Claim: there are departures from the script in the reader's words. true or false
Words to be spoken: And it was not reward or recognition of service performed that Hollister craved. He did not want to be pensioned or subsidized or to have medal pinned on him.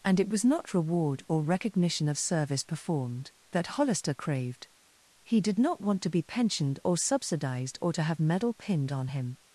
false